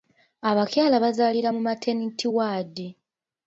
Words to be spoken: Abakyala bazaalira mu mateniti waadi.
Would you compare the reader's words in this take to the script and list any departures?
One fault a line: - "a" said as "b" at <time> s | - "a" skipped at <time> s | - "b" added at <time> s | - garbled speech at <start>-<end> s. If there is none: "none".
none